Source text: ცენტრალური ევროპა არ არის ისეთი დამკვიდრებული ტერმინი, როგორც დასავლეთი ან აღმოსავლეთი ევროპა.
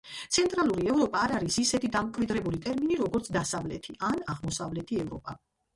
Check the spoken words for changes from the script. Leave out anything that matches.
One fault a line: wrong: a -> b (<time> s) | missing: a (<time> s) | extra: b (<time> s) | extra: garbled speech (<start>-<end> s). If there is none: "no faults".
no faults